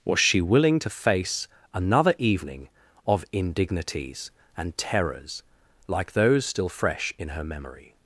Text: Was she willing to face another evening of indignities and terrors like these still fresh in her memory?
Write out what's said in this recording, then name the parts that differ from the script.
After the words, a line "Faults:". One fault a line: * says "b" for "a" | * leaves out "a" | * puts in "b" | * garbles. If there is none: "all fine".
Was she willing to face another evening of indignities and terrors like those still fresh in her memory?
Faults:
* says "those" for "these"